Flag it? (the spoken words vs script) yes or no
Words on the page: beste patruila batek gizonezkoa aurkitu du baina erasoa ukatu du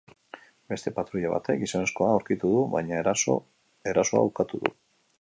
no